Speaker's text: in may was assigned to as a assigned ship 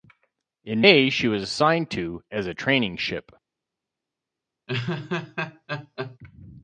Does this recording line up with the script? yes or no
no